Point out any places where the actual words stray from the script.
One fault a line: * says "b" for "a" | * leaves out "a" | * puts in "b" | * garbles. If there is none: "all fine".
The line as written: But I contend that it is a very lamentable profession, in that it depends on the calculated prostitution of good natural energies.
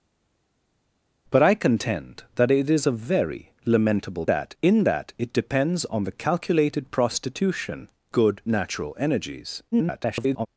* says "that" for "profession"
* leaves out "of"
* garbles